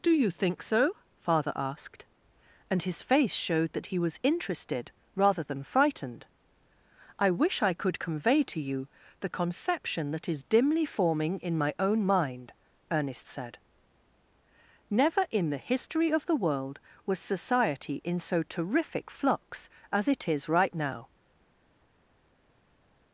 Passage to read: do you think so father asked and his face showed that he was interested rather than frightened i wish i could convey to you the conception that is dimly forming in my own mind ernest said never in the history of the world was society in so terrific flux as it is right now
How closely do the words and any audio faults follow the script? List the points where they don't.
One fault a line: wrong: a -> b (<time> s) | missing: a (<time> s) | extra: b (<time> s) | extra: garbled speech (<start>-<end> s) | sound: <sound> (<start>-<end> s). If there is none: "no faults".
no faults